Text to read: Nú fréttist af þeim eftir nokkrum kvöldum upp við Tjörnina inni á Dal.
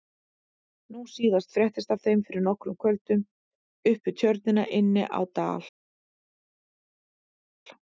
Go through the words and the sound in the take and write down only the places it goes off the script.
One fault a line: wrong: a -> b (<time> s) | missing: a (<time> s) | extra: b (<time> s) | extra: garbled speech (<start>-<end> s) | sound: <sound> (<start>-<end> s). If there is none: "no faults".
extra: síðast (1.1 s)
wrong: eftir -> fyrir (2.3 s)